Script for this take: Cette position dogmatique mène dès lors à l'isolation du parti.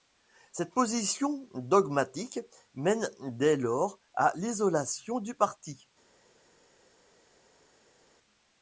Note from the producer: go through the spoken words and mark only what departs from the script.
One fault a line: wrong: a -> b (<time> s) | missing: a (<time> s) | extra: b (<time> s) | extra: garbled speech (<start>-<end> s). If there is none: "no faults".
no faults